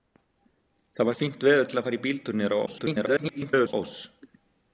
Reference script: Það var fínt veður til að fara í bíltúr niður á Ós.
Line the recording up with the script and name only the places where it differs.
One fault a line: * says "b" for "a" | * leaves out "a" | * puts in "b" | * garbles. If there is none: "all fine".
* garbles